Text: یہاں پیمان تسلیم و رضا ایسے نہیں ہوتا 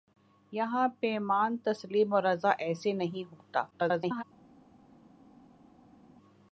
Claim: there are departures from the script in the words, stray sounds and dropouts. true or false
true